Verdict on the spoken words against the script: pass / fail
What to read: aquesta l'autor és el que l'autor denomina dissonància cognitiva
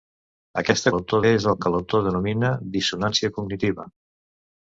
pass